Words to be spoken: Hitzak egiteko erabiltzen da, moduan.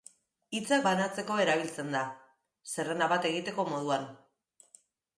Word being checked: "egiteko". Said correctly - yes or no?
no